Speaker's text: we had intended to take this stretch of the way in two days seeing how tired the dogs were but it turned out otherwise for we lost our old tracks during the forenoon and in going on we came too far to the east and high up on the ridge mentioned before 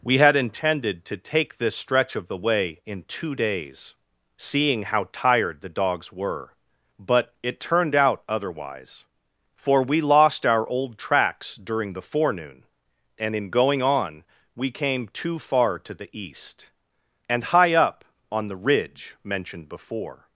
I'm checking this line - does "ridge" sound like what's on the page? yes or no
yes